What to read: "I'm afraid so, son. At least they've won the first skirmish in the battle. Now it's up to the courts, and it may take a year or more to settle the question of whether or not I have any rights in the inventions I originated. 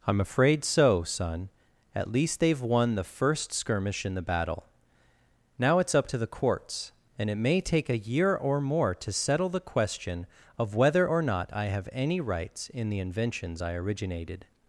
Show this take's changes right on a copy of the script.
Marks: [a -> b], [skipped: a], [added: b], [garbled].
"I'm afraid so, son. At least they've won the first skirmish in the battle. Now it's up to the courts, and it may take a year or more to settle the question of whether or not I have any rights in the inventions I originated.